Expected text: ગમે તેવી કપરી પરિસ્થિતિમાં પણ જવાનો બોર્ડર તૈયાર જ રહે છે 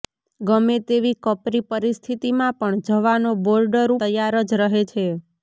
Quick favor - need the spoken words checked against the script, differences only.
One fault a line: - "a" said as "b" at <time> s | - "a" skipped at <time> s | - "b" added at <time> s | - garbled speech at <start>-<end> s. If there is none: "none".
none